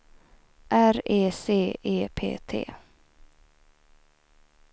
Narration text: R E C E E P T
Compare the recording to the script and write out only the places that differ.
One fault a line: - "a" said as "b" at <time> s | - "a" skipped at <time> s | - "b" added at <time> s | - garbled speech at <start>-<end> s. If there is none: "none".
- "E" skipped at 2.1 s